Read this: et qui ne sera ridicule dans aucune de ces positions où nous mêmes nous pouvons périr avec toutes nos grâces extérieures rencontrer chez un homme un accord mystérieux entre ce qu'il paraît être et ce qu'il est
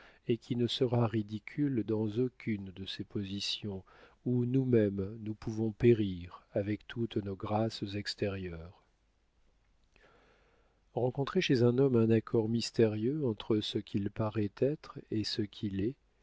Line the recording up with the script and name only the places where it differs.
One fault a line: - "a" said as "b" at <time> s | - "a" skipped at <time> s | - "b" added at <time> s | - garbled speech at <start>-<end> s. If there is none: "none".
none